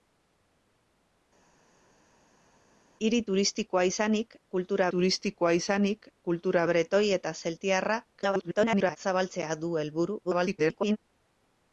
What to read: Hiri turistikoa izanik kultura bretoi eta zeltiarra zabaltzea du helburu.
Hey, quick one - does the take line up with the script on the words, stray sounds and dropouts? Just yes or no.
no